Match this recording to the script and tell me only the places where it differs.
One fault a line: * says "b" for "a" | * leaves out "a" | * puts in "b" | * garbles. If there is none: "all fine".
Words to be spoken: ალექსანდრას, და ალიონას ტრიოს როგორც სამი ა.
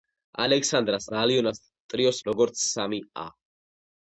all fine